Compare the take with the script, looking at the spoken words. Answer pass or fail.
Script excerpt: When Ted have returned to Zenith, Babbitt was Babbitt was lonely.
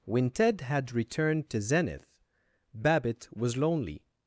fail